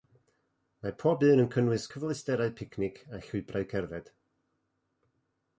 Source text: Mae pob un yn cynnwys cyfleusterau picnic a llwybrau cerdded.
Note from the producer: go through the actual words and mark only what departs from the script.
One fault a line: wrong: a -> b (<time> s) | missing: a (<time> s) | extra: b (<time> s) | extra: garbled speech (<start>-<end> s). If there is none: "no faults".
no faults